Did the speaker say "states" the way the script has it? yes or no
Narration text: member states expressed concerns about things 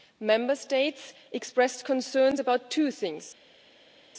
yes